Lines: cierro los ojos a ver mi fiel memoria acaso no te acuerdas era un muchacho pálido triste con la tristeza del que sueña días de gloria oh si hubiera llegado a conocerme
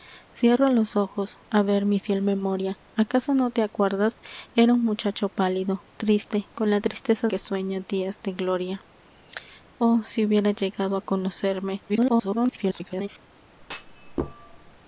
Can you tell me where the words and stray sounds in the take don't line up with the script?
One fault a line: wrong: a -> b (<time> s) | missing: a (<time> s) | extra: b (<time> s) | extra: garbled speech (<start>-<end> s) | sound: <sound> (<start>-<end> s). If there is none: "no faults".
missing: del (7.3 s)
extra: garbled speech (11.9-13.1 s)
sound: thud (13.6-14.8 s)